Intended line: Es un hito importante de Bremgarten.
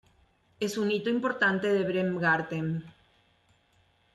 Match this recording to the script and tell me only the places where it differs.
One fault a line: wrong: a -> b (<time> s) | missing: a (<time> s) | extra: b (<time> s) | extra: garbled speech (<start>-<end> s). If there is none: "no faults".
no faults